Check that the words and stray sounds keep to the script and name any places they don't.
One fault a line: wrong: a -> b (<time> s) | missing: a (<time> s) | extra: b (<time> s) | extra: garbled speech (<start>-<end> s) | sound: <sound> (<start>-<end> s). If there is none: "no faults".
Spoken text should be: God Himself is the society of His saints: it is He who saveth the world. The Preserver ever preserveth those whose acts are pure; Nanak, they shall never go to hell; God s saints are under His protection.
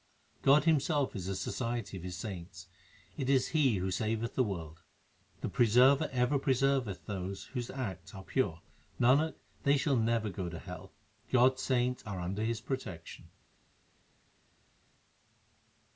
no faults